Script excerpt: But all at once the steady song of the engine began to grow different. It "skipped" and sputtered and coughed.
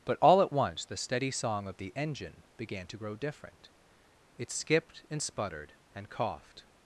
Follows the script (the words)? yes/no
yes